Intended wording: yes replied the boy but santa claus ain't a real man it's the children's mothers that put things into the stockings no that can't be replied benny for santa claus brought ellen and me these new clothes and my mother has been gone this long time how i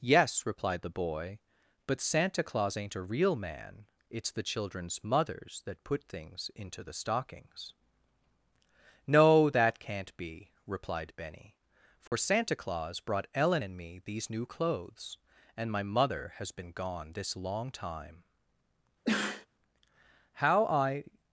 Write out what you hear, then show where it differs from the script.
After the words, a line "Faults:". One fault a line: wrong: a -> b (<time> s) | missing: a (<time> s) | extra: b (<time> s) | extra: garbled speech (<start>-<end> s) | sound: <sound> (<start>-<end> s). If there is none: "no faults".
yes replied the boy but santa claus ain't a real man it's the children's mothers that put things into the stockings no that can't be replied benny for santa claus brought ellen and me these new clothes and my mother has been gone this long time how i
Faults:
sound: dropout (12.1-12.1 s)
sound: sneeze (19.0-19.5 s)